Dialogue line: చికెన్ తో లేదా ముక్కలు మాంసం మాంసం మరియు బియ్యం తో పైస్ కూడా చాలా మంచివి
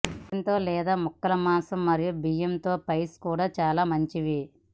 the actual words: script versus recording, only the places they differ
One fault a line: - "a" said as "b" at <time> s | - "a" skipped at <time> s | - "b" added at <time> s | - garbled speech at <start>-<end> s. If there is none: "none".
- "మాంసం" skipped at 1.8 s